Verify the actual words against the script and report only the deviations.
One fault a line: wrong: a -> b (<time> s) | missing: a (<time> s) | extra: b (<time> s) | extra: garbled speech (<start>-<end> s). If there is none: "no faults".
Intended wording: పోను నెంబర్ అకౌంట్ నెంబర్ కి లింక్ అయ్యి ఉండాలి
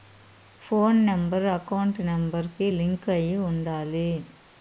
no faults